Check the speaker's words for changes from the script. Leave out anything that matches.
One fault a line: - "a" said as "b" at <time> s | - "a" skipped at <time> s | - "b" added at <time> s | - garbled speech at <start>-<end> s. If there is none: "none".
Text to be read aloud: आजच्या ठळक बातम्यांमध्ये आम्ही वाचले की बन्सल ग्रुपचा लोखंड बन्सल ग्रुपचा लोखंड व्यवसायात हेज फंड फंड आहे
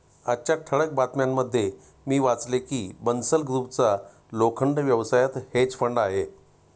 - "आम्ही" said as "मी" at 2.1 s
- "बन्सल ग्रुपचा लोखंड" skipped at 4.8 s
- "फंड" skipped at 6.0 s